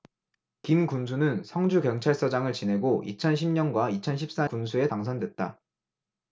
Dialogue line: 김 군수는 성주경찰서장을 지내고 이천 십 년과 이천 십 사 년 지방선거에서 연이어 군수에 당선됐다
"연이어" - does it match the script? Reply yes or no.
no